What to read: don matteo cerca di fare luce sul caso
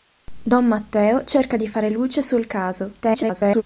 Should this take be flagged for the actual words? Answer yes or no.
yes